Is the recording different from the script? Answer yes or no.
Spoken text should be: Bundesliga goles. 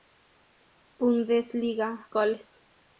no